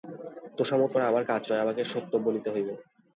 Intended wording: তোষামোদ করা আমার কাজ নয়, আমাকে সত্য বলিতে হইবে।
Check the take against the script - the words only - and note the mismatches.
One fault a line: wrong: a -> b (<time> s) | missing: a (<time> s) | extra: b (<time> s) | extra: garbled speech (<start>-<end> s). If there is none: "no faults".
no faults